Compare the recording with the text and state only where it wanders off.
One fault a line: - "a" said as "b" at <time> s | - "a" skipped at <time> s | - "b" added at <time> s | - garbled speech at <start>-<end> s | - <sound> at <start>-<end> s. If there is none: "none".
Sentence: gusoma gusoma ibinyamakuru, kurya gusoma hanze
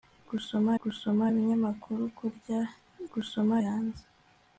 none